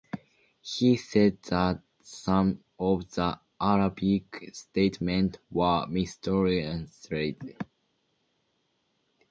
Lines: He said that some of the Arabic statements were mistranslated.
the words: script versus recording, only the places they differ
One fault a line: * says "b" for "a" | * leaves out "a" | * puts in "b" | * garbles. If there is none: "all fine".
all fine